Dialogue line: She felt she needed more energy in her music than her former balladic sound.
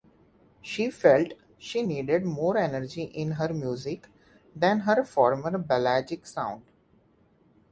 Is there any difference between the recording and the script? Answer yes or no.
no